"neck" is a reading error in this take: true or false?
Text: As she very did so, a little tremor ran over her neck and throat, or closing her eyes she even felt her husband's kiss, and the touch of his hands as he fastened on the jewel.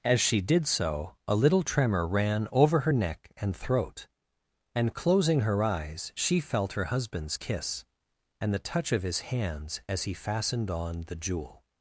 false